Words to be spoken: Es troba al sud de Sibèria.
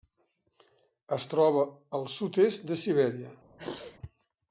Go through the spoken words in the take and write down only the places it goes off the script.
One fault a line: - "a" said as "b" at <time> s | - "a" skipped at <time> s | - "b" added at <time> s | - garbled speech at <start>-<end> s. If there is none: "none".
- "est" added at 2.5 s